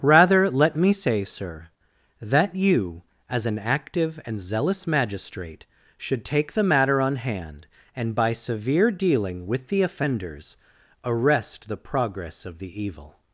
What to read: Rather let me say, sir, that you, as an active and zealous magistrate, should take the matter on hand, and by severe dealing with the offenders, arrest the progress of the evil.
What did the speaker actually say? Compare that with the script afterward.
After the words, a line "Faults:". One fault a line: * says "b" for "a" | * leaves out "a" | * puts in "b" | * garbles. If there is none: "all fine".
Rather let me say, sir, that you, as an active and zealous magistrate, should take the matter on hand, and by severe dealing with the offenders, arrest the progress of the evil.
Faults:
all fine